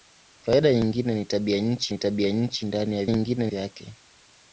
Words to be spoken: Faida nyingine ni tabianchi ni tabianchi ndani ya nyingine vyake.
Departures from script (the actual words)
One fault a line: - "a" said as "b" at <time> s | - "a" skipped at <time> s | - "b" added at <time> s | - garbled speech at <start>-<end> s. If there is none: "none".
none